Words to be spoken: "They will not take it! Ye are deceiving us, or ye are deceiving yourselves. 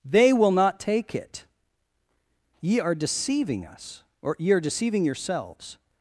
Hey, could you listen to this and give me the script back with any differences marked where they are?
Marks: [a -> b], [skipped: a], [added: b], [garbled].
"They will not take it! Ye are deceiving us, or ye are deceiving yourselves.